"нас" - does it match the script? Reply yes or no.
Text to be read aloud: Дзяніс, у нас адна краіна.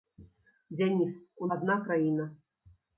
no